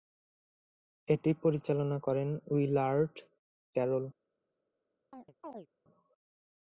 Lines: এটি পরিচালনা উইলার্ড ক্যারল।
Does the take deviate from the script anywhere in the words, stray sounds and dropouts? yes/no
yes